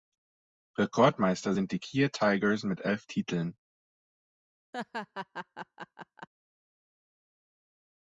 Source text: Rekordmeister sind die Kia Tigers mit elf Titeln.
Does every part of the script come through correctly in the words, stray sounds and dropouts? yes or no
no